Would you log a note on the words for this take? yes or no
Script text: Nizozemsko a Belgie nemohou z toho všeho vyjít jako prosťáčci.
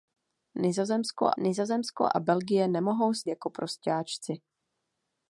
yes